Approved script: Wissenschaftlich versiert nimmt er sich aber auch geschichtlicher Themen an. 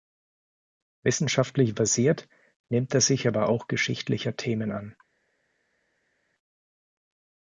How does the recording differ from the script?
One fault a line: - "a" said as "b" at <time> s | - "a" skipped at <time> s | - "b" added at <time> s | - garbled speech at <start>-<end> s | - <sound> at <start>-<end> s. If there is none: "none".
none